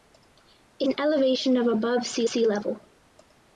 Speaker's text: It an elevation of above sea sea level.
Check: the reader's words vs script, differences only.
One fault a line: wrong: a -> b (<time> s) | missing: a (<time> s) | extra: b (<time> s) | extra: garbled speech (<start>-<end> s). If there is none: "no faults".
no faults